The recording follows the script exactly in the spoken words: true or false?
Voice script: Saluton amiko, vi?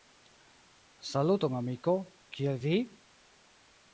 false